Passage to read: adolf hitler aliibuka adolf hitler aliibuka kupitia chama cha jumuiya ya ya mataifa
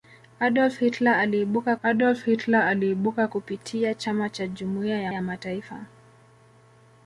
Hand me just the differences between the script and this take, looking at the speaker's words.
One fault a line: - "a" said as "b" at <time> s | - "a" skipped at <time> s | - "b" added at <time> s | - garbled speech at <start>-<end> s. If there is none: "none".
none